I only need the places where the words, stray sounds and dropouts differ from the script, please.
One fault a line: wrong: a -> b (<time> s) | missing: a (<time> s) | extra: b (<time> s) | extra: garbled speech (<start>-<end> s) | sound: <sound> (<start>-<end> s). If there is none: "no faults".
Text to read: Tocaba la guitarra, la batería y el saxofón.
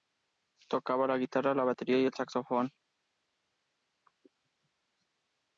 no faults